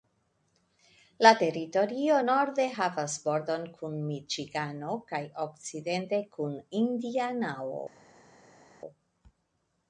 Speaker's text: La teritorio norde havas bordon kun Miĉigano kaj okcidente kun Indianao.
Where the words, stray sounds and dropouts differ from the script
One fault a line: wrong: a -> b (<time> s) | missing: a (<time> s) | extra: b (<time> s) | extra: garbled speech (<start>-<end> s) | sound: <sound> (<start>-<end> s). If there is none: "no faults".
no faults